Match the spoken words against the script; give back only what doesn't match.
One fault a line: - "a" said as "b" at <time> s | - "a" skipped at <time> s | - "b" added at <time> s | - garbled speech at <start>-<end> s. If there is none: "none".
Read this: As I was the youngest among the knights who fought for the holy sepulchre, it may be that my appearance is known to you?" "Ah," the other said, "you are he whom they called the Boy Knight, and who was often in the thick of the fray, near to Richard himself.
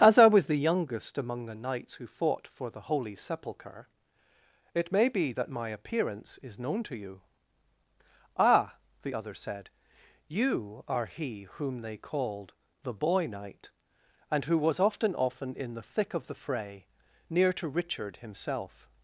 - "often" added at 15.2 s